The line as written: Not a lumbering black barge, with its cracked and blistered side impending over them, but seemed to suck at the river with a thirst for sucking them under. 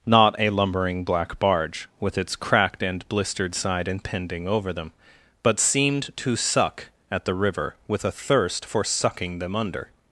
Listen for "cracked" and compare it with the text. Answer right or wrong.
right